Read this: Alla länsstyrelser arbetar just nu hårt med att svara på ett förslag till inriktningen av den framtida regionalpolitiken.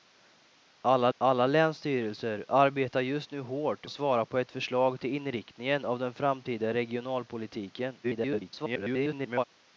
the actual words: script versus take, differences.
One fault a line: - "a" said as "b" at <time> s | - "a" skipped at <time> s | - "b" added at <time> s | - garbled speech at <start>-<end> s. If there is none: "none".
- "alla" added at 1.2 s
- "med" skipped at 3.9 s
- garbled speech at 8.0-9.4 s